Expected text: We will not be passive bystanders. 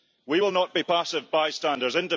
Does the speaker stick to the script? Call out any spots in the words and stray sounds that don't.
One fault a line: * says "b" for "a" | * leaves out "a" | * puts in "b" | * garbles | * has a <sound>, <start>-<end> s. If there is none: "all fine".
all fine